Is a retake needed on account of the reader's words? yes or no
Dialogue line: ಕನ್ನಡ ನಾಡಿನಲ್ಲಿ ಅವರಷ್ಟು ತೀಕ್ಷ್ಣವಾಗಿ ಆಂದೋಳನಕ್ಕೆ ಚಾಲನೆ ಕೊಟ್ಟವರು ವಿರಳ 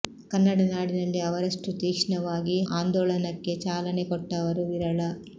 no